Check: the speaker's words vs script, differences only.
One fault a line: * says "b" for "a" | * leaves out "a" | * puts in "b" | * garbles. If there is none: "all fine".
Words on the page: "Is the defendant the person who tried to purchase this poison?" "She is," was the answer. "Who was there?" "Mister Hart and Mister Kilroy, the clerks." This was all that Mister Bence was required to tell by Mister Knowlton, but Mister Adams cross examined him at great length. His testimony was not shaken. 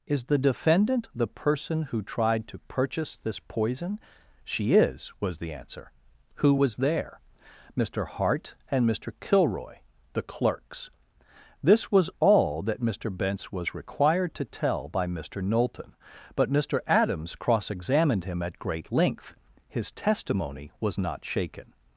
all fine